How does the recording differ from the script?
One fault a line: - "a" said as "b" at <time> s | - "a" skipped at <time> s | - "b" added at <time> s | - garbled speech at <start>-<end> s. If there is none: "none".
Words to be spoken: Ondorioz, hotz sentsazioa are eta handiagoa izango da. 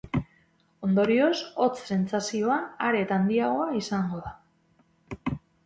none